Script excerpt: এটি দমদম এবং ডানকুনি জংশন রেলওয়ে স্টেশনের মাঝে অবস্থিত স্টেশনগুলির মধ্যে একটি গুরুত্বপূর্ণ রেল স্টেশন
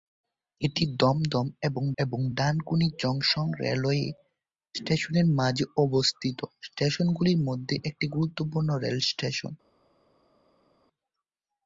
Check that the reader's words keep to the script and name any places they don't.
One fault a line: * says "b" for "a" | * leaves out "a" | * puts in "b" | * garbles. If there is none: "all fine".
* puts in "এবং"